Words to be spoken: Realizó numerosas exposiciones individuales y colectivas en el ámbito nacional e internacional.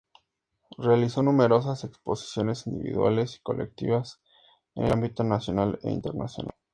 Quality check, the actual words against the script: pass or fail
pass